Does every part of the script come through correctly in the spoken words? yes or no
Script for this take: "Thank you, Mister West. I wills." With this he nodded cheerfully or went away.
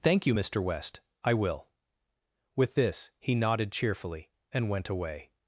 no